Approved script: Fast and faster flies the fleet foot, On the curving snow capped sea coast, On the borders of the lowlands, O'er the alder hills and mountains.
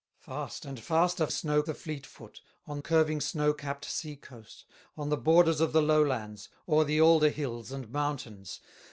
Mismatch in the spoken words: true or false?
true